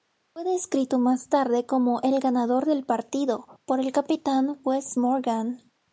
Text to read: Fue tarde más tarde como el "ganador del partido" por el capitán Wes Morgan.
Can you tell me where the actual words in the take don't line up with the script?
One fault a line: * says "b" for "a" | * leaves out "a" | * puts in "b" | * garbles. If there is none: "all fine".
* says "descrito" for "tarde"